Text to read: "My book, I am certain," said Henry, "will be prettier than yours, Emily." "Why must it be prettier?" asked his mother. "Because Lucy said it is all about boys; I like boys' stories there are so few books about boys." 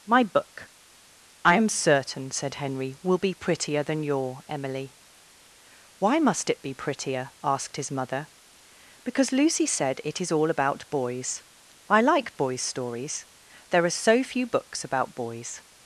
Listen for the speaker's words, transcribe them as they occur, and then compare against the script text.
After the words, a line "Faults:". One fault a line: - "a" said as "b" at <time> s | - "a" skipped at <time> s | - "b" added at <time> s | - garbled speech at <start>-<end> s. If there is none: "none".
"My book, I am certain," said Henry, "will be prettier than your, Emily." "Why must it be prettier?" asked his mother. "Because Lucy said it is all about boys; I like boys' stories there are so few books about boys."
Faults:
- "yours" said as "your" at 4.0 s